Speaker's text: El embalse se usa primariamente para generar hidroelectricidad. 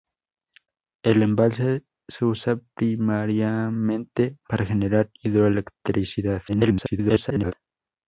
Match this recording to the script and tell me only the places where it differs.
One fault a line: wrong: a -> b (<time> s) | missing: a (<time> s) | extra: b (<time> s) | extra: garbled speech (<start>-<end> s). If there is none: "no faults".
extra: garbled speech (6.5-7.5 s)